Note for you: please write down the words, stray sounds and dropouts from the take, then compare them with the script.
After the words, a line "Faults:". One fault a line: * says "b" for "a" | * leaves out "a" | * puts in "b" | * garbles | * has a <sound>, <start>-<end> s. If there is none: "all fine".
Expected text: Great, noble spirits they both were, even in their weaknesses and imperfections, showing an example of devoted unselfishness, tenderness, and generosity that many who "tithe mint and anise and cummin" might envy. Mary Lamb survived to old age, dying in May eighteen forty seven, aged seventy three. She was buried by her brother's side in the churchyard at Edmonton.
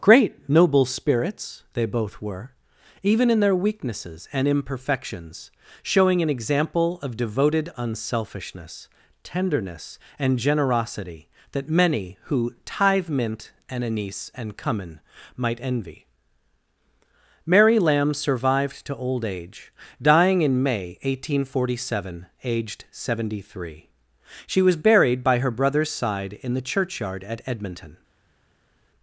Great, noble spirits they both were, even in their weaknesses and imperfections, showing an example of devoted unselfishness, tenderness, and generosity that many who "tithe mint and anise and cummin" might envy. Mary Lamb survived to old age, dying in May eighteen forty seven, aged seventy three. She was buried by her brother's side in the churchyard at Edmonton.
Faults:
all fine